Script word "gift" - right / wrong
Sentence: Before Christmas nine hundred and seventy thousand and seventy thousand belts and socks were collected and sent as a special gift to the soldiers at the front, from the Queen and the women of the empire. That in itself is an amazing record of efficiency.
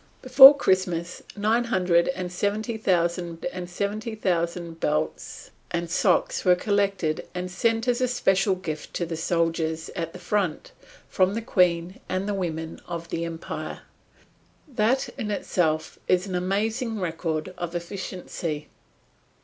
right